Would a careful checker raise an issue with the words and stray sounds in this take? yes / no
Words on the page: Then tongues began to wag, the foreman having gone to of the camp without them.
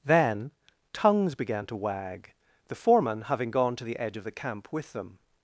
yes